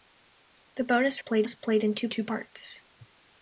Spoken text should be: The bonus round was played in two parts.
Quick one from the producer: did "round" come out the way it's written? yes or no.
no